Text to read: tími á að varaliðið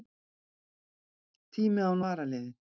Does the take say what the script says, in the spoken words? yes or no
yes